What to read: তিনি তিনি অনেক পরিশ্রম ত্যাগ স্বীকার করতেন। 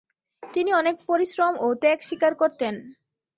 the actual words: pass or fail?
fail